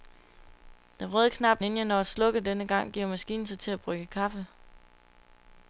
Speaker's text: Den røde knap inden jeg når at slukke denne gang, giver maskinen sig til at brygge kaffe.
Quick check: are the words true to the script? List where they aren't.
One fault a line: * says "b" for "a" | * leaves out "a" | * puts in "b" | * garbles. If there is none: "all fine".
all fine